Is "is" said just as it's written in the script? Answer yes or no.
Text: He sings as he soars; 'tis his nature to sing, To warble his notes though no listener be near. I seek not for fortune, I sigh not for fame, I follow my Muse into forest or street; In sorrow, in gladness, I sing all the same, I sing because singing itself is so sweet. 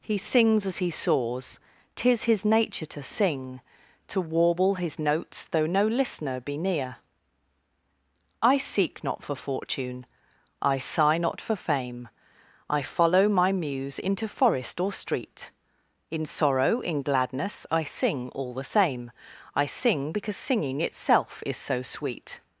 yes